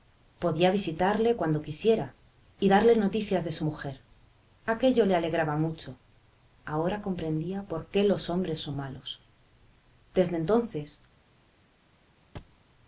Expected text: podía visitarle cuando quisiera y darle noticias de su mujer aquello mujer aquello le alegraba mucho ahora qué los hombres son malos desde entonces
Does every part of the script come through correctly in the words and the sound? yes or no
no